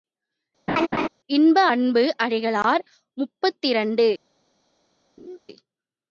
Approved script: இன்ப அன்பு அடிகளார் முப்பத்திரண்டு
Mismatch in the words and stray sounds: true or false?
true